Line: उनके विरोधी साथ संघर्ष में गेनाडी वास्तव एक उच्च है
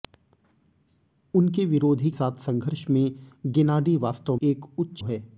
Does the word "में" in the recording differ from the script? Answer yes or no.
no